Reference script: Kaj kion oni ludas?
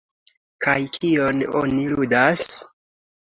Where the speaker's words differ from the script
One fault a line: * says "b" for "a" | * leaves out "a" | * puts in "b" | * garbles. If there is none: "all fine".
all fine